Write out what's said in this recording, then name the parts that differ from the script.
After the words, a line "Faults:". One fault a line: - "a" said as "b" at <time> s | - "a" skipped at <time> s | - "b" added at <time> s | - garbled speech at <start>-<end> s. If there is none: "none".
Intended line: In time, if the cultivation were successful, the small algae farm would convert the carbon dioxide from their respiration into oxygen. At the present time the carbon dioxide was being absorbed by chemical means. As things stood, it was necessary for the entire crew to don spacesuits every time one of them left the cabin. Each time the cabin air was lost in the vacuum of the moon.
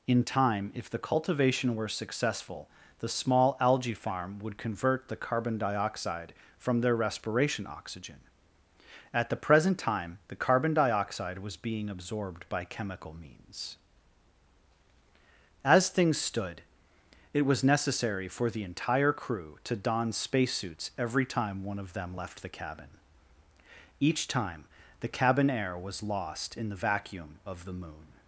In time, if the cultivation were successful, the small algae farm would convert the carbon dioxide from their respiration oxygen. At the present time the carbon dioxide was being absorbed by chemical means. As things stood, it was necessary for the entire crew to don spacesuits every time one of them left the cabin. Each time the cabin air was lost in the vacuum of the moon.
Faults:
- "into" skipped at 7.7 s